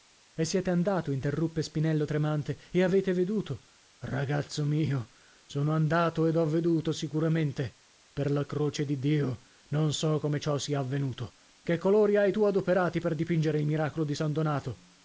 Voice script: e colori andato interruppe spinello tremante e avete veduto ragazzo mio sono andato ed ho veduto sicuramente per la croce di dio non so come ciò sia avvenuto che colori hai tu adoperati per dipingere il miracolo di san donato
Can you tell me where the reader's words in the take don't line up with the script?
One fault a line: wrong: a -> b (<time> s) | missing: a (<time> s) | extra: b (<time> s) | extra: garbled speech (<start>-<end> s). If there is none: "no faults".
wrong: colori -> siete (0.5 s)